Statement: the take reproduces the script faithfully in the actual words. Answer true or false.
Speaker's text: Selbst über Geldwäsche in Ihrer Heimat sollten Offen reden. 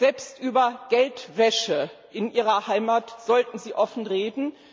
false